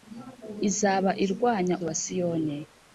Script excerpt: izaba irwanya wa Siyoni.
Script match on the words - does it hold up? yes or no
yes